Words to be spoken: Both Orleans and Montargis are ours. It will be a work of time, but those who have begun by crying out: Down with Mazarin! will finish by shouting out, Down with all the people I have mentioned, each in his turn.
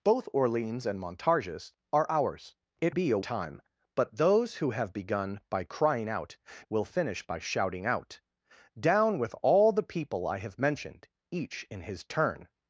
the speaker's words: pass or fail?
fail